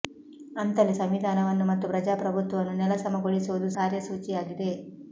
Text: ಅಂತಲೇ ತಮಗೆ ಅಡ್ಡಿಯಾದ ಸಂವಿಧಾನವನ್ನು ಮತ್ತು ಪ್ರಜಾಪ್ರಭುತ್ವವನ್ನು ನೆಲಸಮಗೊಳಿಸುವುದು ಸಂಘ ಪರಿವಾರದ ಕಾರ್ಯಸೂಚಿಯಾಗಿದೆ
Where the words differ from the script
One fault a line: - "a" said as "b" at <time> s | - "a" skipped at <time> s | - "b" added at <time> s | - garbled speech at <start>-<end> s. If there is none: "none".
- "ತಮಗೆ ಅಡ್ಡಿಯಾದ" skipped at 0.9 s
- "ಸಂಘ ಪರಿವಾರದ" skipped at 3.7 s